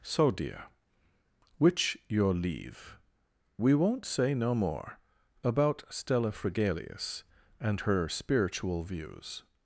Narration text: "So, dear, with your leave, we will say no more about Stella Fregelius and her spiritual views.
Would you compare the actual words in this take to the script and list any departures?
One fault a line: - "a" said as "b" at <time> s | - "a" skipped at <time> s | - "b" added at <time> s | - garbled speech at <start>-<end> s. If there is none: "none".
- "with" said as "which" at 1.6 s
- "will" said as "won't" at 3.7 s